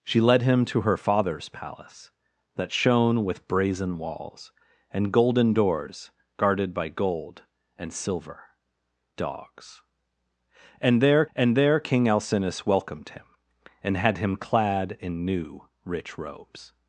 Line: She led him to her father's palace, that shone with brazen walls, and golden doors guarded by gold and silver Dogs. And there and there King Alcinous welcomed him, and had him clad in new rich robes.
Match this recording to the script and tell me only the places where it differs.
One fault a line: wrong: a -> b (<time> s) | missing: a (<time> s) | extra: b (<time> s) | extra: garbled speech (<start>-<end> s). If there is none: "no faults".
no faults